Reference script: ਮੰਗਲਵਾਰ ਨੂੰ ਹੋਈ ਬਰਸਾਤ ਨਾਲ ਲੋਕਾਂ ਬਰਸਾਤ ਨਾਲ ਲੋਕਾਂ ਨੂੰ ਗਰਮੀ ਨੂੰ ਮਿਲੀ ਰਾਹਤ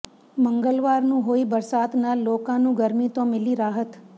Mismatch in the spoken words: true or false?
true